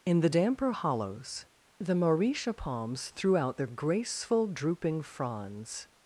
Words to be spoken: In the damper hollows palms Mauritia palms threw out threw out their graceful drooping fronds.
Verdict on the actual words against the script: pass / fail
fail